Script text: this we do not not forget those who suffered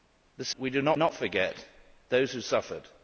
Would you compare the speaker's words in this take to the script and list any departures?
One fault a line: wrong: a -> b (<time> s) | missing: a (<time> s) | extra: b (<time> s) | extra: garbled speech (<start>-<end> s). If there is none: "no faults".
no faults